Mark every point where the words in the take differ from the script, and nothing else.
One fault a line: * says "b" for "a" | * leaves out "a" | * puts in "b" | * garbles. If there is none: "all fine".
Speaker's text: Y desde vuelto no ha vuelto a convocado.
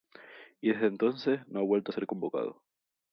* says "entonces" for "vuelto"
* puts in "ser"